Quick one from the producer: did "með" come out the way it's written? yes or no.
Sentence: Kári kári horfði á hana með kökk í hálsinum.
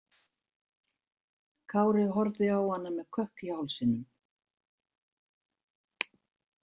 yes